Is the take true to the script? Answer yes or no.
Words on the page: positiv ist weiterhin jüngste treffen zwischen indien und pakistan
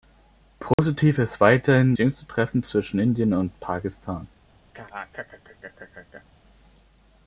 yes